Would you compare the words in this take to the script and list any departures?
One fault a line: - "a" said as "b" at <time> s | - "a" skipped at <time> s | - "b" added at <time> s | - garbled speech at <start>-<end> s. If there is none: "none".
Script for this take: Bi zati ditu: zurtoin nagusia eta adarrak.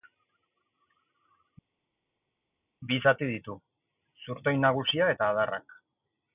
none